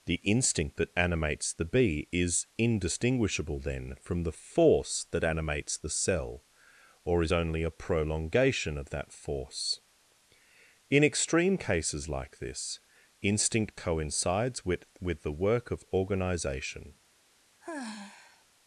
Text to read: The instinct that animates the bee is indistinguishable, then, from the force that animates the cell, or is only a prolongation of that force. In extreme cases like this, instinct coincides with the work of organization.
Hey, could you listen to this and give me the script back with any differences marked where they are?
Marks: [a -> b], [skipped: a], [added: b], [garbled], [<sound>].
The instinct that animates the bee is indistinguishable, then, from the force that animates the cell, or is only a prolongation of that force. In extreme cases like this, instinct coincides with [added: with] the work of organization. [sigh]